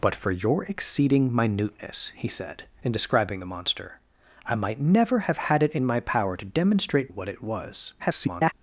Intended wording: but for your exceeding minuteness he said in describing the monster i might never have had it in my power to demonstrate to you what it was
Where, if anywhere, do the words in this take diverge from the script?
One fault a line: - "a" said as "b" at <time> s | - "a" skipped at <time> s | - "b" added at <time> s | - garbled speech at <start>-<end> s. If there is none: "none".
- "to you" skipped at 7.1 s
- garbled speech at 8.0-8.5 s